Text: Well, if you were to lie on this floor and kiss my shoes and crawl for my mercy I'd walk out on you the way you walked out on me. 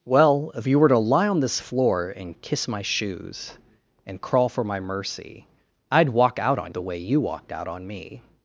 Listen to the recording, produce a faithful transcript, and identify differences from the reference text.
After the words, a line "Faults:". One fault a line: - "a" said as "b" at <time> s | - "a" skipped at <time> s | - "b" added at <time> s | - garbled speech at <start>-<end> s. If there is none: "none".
Well, if you were to lie on this floor and kiss my shoes and crawl for my mercy I'd walk out on the way you walked out on me.
Faults:
- "you" skipped at 6.7 s